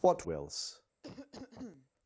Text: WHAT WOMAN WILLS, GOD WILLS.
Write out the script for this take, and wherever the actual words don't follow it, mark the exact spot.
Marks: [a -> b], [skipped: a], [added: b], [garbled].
WHAT [skipped: WOMAN WILLS, GOD] WILLS.